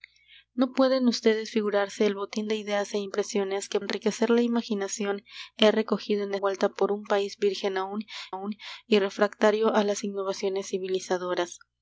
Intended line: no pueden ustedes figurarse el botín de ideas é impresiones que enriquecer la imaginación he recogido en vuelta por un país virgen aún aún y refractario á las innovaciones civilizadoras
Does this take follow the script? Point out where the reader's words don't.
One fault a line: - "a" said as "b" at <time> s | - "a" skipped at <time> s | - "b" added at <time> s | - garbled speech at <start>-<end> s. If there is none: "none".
none